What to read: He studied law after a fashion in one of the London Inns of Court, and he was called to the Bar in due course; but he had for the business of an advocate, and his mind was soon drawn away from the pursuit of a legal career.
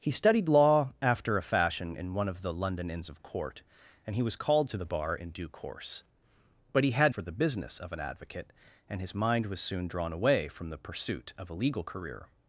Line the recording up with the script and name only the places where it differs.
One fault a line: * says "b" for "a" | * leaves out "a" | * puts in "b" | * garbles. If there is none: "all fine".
all fine